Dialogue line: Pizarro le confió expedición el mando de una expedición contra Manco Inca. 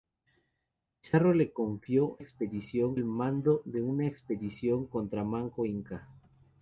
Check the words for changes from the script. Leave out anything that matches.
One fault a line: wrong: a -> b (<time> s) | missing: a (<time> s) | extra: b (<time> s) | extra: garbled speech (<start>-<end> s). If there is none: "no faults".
no faults